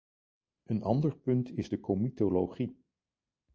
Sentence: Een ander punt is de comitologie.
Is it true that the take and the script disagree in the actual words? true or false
false